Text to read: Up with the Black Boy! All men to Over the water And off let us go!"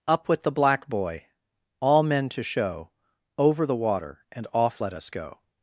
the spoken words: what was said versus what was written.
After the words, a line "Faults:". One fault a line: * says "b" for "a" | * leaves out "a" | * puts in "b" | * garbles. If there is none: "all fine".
Up with the Black Boy! All men to show, Over the water And off let us go!"
Faults:
* puts in "show"